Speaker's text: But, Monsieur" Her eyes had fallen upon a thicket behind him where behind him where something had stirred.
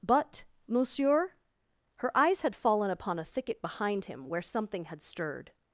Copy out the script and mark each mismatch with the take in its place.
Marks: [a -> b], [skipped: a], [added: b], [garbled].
But, Monsieur" Her eyes had fallen upon a thicket behind him where [skipped: behind him where] something had stirred.